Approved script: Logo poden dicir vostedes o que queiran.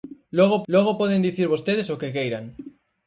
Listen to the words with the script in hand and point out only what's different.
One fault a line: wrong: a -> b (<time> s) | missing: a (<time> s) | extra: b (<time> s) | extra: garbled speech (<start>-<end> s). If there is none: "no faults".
extra: logo (0.7 s)